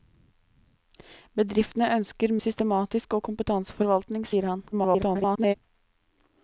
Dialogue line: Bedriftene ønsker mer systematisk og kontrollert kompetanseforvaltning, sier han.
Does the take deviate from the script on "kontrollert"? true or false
true